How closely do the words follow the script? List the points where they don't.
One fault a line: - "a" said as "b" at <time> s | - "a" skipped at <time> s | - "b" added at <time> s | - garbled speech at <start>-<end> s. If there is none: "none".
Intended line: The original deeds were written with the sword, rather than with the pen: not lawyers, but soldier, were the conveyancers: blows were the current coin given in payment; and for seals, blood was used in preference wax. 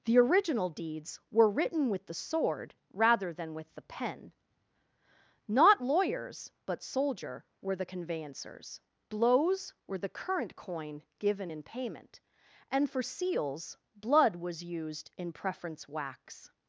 none